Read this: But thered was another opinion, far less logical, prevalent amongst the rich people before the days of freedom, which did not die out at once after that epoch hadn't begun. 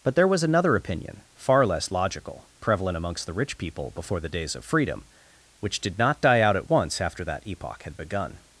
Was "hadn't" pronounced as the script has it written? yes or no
no